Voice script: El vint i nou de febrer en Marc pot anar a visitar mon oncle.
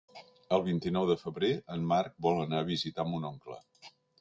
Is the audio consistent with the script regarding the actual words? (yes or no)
no